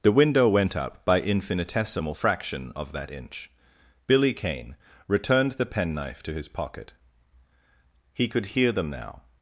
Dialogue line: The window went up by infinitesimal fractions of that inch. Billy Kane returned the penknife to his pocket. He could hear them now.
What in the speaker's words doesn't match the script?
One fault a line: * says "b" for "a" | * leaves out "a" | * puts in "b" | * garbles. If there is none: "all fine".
* says "fraction" for "fractions"